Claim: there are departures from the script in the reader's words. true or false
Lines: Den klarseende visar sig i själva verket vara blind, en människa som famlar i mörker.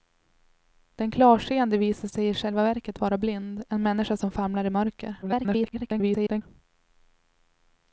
true